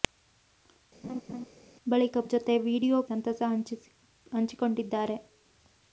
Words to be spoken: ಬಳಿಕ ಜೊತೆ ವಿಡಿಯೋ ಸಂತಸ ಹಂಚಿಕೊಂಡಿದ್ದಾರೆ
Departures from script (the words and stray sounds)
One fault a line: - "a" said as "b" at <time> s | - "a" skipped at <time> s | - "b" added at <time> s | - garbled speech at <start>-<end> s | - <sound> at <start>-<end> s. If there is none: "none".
- laugh at 1.0-1.5 s